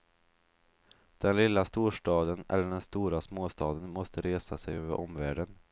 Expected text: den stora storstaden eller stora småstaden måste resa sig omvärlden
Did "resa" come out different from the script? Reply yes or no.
no